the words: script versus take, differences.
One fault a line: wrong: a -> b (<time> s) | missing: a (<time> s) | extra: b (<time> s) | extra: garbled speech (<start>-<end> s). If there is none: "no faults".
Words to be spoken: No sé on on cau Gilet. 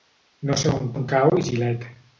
no faults